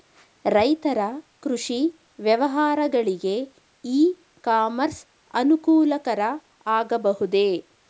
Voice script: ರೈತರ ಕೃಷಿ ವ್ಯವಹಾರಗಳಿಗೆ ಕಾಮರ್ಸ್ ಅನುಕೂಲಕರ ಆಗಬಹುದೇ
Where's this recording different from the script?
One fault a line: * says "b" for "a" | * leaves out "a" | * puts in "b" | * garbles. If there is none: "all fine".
* puts in "ಇ"